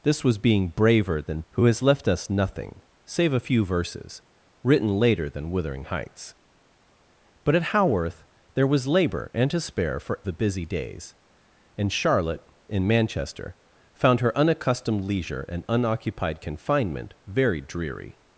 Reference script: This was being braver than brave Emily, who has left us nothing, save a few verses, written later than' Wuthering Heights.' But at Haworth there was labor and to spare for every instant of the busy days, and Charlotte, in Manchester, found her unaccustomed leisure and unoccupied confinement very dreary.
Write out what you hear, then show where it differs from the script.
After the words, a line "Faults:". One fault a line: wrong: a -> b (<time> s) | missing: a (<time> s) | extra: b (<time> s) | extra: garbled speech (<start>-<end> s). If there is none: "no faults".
This was being braver than who has left us nothing, save a few verses, written later than' Wuthering Heights.' But at Haworth there was labor and to spare for the busy days, and Charlotte, in Manchester, found her unaccustomed leisure and unoccupied confinement very dreary.
Faults:
missing: brave Emily (1.4 s)
missing: every instant of (10.2 s)